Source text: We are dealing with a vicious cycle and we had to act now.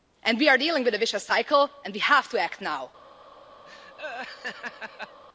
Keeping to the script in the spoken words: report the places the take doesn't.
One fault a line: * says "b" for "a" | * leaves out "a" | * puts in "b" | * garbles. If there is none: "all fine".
* says "have" for "had"